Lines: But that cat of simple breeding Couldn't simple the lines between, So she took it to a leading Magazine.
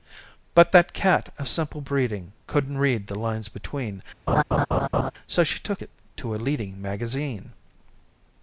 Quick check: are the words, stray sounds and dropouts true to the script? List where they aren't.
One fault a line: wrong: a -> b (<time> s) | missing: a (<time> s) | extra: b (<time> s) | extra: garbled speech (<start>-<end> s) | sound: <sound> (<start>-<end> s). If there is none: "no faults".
wrong: simple -> read (2.8 s)
sound: laugh (4.3-5.1 s)